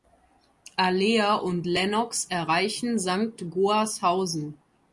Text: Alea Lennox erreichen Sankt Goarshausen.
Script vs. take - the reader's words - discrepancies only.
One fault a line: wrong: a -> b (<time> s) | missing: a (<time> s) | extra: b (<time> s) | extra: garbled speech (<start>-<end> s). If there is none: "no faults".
extra: und (1.4 s)